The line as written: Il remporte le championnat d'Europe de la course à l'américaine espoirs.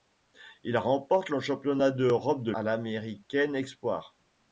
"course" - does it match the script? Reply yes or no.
no